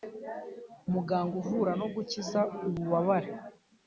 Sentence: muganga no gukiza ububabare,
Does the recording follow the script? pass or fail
fail